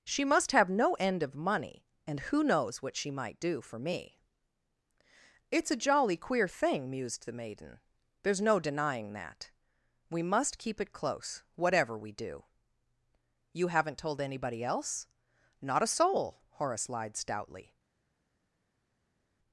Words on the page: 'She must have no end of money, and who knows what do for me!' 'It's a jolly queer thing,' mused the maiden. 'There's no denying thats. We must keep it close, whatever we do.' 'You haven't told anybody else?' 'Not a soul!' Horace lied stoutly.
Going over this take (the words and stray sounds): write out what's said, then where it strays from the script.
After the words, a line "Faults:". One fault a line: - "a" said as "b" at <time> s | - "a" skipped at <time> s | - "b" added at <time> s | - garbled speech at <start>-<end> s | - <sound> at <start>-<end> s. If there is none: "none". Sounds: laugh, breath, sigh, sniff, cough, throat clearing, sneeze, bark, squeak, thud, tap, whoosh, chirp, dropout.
'She must have no end of money, and who knows what she might do for me!' 'It's a jolly queer thing,' mused the maiden. 'There's no denying that. We must keep it close, whatever we do.' 'You haven't told anybody else?' 'Not a soul!' Horace lied stoutly.
Faults:
- "she might" added at 3.0 s
- "thats" said as "that" at 9.1 s